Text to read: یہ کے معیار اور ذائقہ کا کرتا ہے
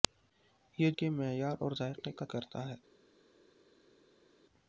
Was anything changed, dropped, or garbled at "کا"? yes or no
no